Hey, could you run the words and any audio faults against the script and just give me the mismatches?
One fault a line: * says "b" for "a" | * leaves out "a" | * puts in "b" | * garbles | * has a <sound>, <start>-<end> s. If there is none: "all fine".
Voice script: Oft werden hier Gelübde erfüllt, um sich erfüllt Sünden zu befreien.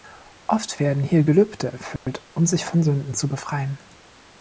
* has a dropout, 2.0-2.1 s
* says "von" for "erfüllt"